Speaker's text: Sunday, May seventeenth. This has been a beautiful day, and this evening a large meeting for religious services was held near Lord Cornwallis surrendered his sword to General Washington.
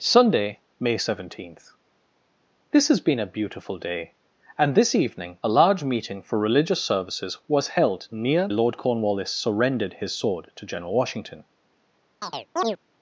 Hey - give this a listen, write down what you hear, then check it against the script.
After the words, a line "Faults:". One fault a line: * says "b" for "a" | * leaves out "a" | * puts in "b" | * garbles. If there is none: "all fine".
Sunday, May seventeenth. This has been a beautiful day, and this evening a large meeting for religious services was held near Lord Cornwallis surrendered his sword to General Washington.
Faults:
all fine